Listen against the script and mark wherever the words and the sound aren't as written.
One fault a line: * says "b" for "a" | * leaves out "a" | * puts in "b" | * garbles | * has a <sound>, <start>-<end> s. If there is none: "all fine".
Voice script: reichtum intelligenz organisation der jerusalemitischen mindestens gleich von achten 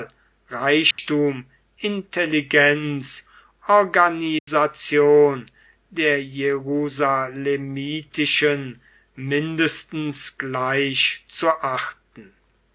* has a dropout, 0.9-1.0 s
* has a dropout, 4.4-4.5 s
* says "zu" for "von"